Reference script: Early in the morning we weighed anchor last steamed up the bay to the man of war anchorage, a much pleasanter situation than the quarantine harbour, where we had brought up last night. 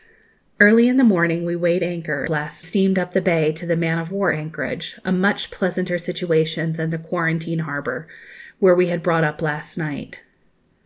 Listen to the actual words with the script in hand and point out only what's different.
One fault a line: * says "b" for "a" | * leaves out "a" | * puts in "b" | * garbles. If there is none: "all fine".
all fine